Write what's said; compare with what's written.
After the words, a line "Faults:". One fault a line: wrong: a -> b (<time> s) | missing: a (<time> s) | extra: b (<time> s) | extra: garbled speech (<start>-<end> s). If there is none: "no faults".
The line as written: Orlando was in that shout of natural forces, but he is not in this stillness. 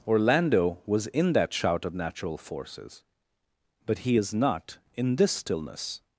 Orlando was in that shout of natural forces, but he is not in this stillness.
Faults:
no faults